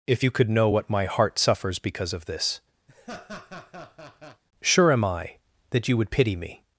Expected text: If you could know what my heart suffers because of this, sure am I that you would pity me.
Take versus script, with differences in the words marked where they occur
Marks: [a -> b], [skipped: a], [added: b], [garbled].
If you could know what my heart suffers because of this, sure am I that you would pity me.